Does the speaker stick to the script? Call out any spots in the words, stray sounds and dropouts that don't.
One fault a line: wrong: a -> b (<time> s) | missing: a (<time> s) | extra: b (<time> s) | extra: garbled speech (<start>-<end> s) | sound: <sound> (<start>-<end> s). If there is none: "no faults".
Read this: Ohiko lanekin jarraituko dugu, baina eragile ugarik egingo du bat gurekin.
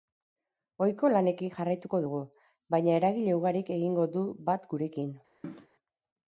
sound: cough (5.4-5.7 s)